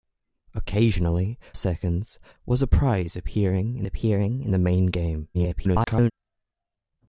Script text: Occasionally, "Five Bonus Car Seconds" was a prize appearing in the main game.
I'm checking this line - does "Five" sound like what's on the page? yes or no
no